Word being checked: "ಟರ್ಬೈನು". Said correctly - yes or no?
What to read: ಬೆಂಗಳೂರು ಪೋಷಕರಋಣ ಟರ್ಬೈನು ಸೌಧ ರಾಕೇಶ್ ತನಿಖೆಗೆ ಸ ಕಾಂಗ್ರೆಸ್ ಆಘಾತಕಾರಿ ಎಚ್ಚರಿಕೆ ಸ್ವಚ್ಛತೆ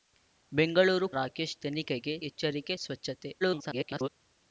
no